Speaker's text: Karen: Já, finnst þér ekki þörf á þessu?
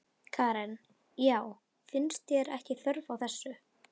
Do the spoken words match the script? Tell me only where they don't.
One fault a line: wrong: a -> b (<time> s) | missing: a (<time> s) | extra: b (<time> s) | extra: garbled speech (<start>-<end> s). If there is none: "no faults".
no faults